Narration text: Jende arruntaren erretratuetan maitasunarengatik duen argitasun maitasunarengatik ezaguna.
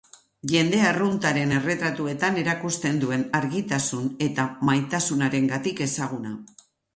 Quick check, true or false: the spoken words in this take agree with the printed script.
false